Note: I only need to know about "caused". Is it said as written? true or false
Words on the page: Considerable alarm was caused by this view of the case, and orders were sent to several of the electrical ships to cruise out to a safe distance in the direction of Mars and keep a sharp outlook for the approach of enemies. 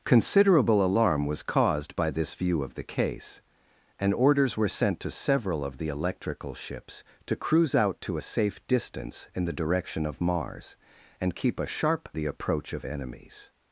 true